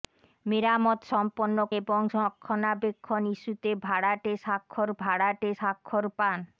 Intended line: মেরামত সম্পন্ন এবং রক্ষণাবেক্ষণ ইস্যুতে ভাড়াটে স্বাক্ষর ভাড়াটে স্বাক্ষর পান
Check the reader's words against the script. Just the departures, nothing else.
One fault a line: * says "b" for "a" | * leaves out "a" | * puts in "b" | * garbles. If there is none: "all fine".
all fine